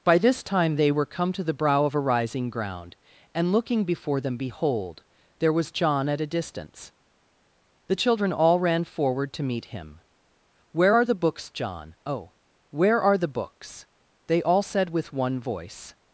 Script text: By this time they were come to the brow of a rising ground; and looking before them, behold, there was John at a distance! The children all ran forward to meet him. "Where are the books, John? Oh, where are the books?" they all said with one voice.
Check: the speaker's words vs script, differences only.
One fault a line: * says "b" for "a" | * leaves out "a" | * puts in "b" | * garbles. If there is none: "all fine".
all fine